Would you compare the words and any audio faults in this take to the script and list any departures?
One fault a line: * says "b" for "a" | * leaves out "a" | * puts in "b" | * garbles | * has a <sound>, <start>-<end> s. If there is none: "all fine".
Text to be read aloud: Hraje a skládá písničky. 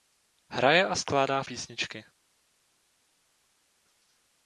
all fine